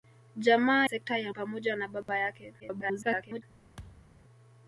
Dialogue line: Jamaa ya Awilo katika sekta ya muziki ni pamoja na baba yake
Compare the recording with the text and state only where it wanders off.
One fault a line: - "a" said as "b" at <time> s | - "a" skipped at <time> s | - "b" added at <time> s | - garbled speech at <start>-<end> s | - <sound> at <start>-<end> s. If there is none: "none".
- "ya Awilo katika" skipped at 0.9 s
- "muziki ni" skipped at 1.3 s
- dropout at 2.0-2.1 s
- garbled speech at 2.6-3.4 s
- thud at 3.8-4.2 s